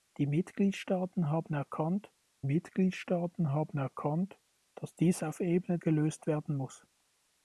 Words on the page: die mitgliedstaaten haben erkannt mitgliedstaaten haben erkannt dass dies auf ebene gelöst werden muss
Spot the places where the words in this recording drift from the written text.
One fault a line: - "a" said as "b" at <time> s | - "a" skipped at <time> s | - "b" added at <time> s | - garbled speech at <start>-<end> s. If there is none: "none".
none